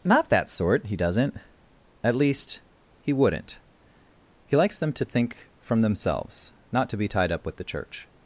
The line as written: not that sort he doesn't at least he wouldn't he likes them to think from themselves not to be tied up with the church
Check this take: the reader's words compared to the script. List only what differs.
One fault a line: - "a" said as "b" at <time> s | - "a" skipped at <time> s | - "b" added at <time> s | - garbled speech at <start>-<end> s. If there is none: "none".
none